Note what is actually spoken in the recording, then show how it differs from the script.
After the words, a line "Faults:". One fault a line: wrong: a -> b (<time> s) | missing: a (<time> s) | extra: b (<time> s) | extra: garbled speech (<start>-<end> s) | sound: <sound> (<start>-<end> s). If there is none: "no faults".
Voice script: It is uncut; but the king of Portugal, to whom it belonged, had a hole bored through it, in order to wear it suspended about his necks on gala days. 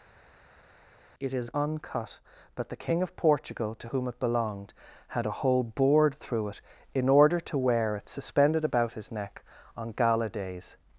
It is uncut; but the king of Portugal, to whom it belonged, had a hole bored through it, in order to wear it suspended about his neck on gala days.
Faults:
wrong: necks -> neck (9.1 s)